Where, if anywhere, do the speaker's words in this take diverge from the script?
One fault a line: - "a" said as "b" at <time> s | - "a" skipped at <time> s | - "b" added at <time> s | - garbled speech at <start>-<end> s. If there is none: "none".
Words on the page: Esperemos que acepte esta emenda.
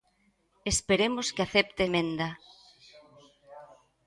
- "esta" skipped at 1.8 s